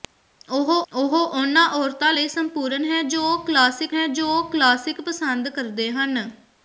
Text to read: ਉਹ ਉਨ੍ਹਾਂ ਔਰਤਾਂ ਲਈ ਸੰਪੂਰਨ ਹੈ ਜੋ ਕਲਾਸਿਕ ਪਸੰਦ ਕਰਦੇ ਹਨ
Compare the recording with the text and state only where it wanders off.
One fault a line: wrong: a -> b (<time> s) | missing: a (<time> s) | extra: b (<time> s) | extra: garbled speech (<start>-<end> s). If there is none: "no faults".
extra: ਉਹ (0.9 s)
extra: ਹੈ ਜੋ ਕਲਾਸਿਕ (3.9 s)